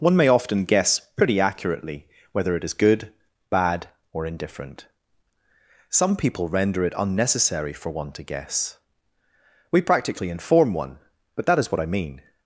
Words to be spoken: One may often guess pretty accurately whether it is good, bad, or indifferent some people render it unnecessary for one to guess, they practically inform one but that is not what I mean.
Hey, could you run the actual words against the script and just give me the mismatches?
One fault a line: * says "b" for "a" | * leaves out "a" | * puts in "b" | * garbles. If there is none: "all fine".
* says "we" for "they"
* leaves out "not"